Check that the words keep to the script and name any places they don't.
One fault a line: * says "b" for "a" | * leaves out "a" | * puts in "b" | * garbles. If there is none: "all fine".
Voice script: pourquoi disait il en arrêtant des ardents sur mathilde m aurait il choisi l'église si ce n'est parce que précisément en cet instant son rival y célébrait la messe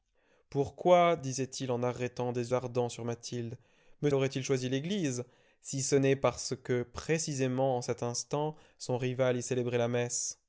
all fine